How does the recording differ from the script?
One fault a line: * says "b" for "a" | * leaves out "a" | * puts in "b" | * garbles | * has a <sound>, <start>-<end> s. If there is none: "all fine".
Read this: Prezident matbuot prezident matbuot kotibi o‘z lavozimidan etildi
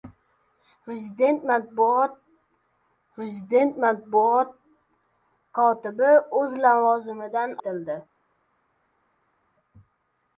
all fine